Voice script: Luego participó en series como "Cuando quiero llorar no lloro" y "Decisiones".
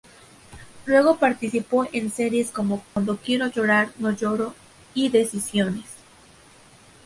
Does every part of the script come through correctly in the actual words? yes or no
yes